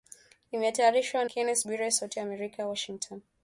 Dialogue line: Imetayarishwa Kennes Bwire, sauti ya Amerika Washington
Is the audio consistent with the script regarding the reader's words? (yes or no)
yes